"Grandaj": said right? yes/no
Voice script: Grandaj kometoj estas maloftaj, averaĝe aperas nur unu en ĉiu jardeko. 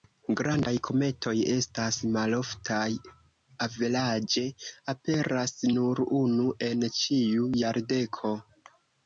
yes